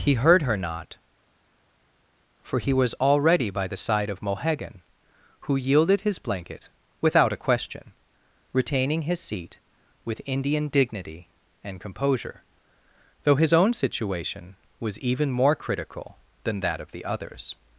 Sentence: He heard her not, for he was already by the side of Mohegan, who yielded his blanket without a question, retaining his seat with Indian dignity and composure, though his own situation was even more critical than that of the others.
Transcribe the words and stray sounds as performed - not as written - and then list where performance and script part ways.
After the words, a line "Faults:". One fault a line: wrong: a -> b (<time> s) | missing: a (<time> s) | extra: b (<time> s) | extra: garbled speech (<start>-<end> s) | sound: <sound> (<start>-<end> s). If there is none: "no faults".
He heard her not, for he was already by the side of Mohegan, who yielded his blanket without a question, retaining his seat with Indian dignity and composure, though his own situation was even more critical than that of the others.
Faults:
no faults